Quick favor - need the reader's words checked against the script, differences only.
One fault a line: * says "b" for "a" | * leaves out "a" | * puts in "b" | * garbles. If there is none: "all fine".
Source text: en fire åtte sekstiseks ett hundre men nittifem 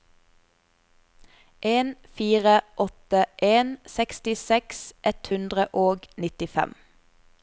* puts in "en"
* says "og" for "men"